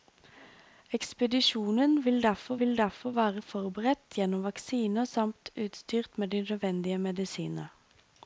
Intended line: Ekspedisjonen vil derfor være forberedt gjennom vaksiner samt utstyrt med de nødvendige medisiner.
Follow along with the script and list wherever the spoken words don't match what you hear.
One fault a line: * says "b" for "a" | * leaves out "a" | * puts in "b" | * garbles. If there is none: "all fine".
* puts in "vil derfor"